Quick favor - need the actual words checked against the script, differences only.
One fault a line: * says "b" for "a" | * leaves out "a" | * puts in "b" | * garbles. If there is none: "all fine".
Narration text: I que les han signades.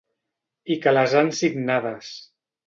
all fine